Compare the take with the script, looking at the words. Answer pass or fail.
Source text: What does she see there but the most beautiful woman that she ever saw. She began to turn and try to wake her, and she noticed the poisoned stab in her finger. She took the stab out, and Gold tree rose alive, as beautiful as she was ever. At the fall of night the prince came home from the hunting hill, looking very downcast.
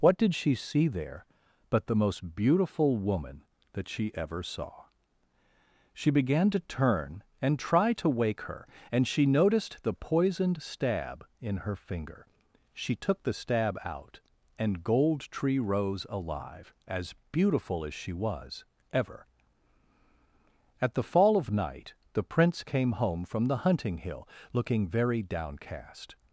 fail